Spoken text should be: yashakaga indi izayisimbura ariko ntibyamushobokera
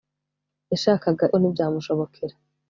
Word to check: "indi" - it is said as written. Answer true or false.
false